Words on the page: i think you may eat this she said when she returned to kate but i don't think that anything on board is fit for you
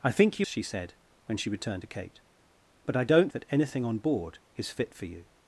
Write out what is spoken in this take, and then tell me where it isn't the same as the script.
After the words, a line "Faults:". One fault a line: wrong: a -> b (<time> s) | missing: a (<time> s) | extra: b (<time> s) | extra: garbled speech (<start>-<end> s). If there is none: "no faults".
i think you she said when she returned to kate but i don't that anything on board is fit for you
Faults:
missing: may eat this (0.5 s)
missing: think (3.3 s)